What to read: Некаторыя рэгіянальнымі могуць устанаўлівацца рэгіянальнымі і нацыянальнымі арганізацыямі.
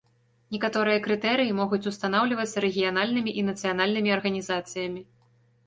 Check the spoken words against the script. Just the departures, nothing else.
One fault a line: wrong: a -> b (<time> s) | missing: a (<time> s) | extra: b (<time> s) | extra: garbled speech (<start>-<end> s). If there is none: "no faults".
wrong: рэгіянальнымі -> крытэрыі (1.1 s)